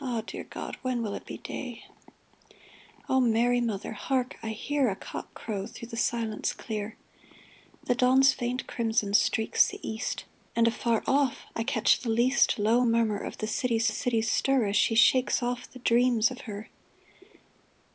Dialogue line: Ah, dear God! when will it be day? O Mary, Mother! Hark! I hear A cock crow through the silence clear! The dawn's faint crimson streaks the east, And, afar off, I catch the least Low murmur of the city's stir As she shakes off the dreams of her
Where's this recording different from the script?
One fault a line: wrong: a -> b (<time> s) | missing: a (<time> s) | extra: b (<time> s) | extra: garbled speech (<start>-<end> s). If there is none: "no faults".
extra: city's (13.9 s)